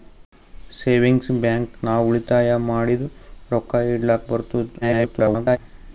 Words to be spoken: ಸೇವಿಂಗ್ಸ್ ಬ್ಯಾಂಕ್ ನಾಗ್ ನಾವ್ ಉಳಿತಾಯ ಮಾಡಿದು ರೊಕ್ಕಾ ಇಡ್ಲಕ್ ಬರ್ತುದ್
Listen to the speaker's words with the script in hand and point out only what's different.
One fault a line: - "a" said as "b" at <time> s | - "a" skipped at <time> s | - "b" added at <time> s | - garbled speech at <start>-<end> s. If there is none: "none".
- "ನಾಗ್" skipped at 1.8 s
- garbled speech at 4.8-5.6 s